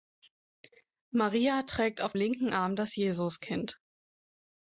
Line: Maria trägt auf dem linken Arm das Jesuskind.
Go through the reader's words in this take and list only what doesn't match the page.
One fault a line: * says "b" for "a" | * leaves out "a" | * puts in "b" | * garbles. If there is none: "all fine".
* leaves out "dem"